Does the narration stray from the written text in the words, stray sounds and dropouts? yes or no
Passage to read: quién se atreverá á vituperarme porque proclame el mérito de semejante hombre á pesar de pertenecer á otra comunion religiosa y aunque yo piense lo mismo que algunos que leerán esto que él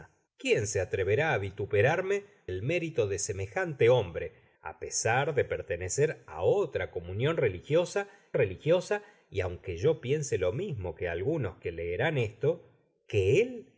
yes